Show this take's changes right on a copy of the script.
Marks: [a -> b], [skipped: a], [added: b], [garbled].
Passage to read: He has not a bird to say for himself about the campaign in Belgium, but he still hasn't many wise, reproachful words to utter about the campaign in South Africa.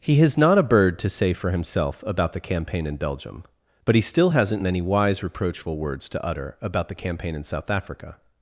He has not a bird to say for himself about the campaign in Belgium, but he still hasn't many wise, reproachful words to utter about the campaign in South Africa.